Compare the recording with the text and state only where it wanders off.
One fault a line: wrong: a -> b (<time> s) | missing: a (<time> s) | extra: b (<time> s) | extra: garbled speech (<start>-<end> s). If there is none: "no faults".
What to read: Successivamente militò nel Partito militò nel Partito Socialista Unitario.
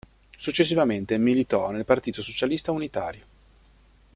missing: militò nel Partito (2.2 s)